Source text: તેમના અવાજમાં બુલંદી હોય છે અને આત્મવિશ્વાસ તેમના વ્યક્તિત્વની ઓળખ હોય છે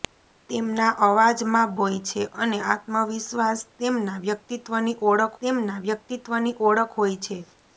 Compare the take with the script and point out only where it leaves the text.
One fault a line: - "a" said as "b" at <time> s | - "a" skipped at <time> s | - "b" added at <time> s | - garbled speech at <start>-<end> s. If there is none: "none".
- "બુલંદી" skipped at 1.8 s
- "તેમના વ્યક્તિત્વની ઓળખ" added at 5.4 s